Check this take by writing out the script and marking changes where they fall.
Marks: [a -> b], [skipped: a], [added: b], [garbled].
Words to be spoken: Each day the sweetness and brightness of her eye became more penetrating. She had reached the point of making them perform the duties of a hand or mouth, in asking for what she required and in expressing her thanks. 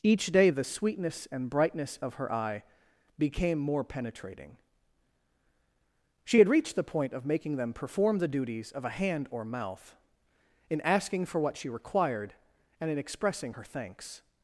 Each day the sweetness and brightness of her eye became more penetrating. She had reached the point of making them perform the duties of a hand or mouth, in asking for what she required and in expressing her thanks.